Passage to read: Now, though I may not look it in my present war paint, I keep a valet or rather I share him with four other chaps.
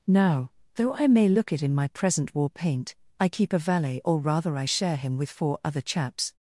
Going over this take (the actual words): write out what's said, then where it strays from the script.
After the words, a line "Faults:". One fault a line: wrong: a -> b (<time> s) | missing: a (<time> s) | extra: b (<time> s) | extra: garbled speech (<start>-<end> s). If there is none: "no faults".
Now, though I may look it in my present war paint, I keep a valet or rather I share him with four other chaps.
Faults:
missing: not (1.3 s)